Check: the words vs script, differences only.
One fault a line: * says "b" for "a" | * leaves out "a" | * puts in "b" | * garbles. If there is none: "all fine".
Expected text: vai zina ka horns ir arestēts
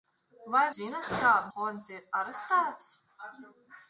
all fine